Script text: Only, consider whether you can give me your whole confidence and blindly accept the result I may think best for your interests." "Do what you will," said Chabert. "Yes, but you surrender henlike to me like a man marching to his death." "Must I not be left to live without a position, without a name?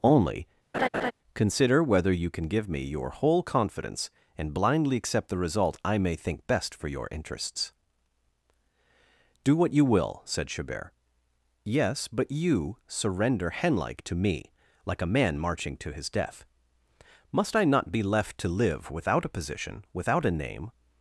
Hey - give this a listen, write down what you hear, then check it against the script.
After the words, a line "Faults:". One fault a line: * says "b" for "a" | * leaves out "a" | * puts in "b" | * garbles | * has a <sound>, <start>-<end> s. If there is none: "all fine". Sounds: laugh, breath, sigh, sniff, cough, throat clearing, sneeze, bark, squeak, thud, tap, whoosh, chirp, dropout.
Only, consider whether you can give me your whole confidence and blindly accept the result I may think best for your interests." "Do what you will," said Chabert. "Yes, but you surrender henlike to me like a man marching to his death." "Must I not be left to live without a position, without a name?
Faults:
* has a laugh, 0.7-1.1 s